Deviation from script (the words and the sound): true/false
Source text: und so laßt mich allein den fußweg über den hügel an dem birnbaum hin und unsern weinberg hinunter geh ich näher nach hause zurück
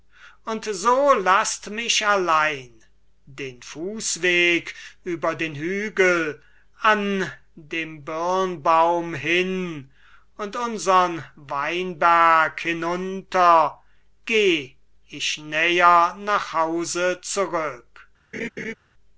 true